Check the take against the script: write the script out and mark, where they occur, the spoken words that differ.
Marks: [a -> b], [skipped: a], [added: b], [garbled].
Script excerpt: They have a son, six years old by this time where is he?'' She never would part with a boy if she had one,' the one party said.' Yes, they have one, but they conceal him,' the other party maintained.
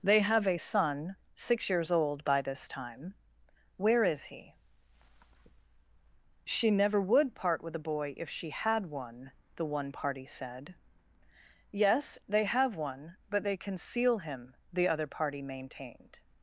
They have a son, six years old by this time where is he?'' She never would part with a boy if she had one,' the one party said.' Yes, they have one, but they conceal him,' the other party maintained.